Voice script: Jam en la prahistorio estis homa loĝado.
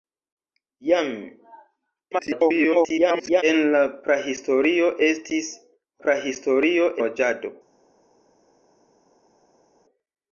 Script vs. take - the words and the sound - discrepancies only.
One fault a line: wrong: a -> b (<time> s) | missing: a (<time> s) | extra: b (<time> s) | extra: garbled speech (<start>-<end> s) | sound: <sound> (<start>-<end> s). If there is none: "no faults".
extra: garbled speech (2.1-3.4 s)
wrong: homa -> prahistorio (6.1 s)